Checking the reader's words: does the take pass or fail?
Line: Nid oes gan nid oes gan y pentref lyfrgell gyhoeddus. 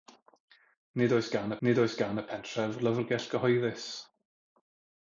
pass